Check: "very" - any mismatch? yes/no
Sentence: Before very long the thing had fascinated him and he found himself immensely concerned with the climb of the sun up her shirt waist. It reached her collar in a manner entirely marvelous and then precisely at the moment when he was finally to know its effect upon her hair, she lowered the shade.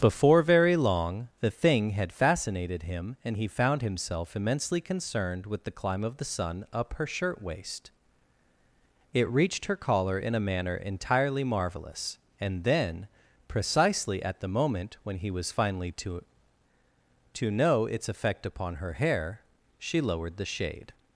no